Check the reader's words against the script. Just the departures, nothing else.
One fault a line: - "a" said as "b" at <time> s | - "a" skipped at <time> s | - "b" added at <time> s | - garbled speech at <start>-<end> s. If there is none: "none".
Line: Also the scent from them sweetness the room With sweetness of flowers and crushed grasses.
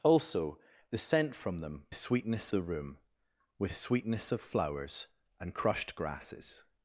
none